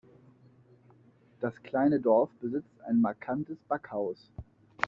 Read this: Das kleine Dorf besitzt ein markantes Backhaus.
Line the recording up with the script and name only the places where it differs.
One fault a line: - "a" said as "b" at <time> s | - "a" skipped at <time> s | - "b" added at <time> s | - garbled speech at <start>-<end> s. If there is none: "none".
none